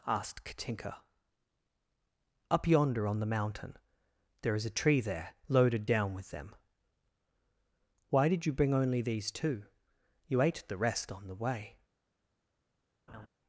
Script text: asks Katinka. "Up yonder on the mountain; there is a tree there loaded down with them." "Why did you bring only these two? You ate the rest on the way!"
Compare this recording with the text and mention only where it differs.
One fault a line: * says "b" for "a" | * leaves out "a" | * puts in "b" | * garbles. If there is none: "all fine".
* says "asked" for "asks"